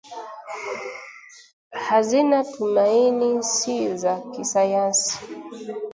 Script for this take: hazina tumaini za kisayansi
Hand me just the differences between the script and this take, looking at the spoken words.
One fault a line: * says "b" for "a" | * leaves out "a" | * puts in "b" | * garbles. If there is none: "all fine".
* puts in "si"